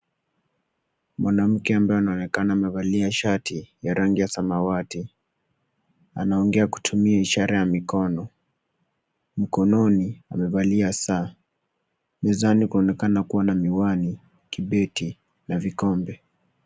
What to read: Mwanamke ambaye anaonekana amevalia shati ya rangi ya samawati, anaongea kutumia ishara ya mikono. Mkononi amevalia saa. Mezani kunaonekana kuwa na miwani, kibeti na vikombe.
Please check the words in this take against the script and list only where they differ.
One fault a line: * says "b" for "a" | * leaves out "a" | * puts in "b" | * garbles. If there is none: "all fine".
all fine